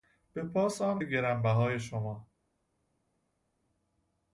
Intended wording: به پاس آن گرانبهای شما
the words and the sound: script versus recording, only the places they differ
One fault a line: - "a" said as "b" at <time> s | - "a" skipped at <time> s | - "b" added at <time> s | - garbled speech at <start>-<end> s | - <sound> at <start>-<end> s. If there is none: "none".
none